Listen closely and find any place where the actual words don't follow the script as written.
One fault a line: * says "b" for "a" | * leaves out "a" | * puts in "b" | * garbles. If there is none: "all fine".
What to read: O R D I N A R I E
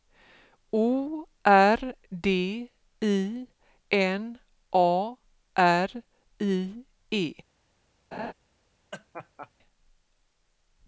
all fine